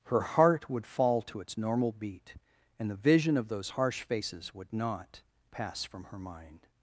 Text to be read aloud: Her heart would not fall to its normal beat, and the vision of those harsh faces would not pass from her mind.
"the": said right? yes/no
yes